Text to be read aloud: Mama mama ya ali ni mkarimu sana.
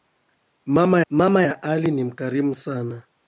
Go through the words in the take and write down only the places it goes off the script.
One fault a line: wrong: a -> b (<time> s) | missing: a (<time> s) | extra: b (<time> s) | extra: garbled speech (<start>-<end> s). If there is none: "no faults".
no faults